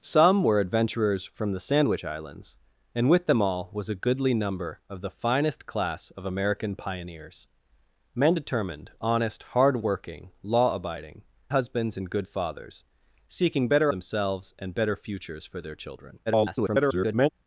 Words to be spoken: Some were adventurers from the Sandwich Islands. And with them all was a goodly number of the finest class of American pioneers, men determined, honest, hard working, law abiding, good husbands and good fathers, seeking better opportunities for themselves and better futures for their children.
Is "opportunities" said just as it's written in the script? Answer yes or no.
no